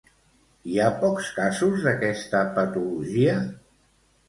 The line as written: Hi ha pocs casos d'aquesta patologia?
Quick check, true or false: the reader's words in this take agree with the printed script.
true